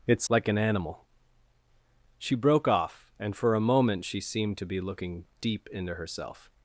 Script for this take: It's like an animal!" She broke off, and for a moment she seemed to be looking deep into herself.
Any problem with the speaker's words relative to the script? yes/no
no